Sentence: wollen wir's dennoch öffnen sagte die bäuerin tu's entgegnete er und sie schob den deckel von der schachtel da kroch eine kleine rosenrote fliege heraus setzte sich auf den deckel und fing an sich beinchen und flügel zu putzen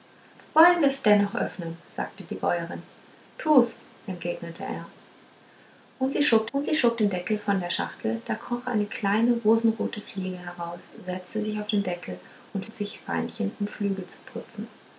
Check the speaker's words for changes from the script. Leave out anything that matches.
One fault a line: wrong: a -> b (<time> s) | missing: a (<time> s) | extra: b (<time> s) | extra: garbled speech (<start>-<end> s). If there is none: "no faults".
extra: und sie schob (6.5 s)
missing: fing an (12.7 s)